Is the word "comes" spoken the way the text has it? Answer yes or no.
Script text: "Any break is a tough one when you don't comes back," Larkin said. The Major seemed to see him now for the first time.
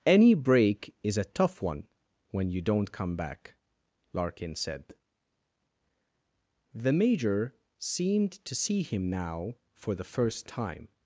no